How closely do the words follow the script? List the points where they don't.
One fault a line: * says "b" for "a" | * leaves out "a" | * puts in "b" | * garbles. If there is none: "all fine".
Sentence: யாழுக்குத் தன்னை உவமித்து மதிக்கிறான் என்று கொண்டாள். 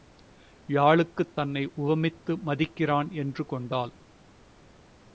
all fine